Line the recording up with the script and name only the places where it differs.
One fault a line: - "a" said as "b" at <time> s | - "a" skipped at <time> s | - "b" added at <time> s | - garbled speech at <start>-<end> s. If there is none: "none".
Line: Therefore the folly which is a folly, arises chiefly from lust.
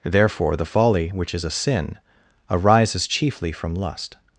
- "folly" said as "sin" at 1.5 s